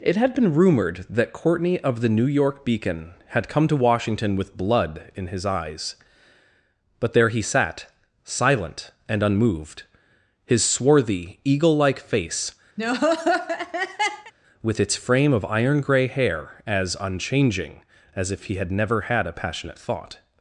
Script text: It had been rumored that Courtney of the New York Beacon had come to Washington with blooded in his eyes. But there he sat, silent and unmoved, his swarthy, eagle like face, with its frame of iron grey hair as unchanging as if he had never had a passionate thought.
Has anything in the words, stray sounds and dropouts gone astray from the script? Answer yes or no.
yes